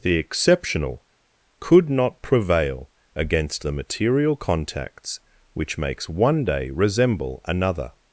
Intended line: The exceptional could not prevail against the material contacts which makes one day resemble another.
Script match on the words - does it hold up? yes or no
yes